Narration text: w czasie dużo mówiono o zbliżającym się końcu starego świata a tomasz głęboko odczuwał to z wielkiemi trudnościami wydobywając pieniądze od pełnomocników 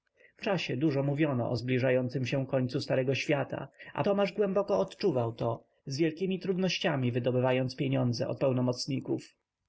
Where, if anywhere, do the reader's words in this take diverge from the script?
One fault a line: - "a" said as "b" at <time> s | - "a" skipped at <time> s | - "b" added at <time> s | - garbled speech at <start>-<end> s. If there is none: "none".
none